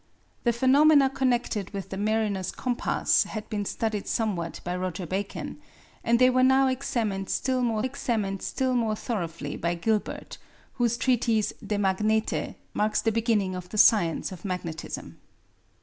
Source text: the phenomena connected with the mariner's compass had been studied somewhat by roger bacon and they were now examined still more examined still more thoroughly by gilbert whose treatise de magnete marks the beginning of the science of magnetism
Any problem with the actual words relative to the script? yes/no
no